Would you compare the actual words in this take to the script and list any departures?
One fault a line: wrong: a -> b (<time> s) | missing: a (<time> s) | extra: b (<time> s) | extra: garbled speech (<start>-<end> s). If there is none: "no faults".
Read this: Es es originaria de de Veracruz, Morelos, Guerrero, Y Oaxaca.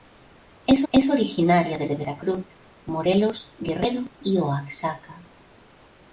no faults